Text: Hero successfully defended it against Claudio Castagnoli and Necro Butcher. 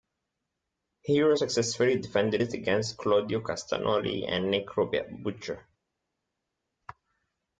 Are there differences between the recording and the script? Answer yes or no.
no